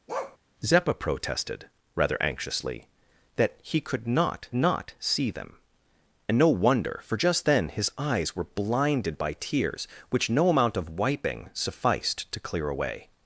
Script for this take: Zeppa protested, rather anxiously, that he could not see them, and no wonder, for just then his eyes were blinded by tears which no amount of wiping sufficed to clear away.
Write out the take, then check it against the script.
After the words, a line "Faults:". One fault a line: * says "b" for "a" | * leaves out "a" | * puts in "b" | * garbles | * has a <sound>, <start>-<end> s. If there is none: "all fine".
Zeppa protested, rather anxiously, that he could not not see them, and no wonder, for just then his eyes were blinded by tears which no amount of wiping sufficed to clear away.
Faults:
* has a bark, 0.1-0.4 s
* puts in "not"